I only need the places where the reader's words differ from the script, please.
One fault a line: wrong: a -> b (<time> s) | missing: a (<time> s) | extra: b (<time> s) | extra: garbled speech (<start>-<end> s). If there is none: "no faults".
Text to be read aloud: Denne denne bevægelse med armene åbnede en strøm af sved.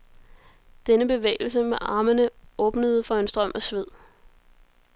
missing: denne (1.1 s)
extra: for (3.0 s)